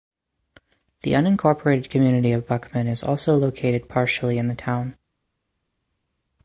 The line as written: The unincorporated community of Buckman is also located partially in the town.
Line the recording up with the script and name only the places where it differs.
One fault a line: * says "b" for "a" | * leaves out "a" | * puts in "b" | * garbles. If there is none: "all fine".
all fine